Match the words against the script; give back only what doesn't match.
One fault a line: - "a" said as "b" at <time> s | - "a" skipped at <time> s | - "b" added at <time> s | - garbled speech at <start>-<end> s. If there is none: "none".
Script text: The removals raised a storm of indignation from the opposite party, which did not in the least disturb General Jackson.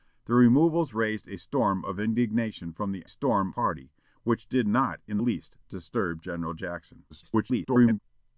- "opposite" said as "storm" at 3.1 s
- "the" skipped at 5.2 s
- garbled speech at 7.1-8.0 s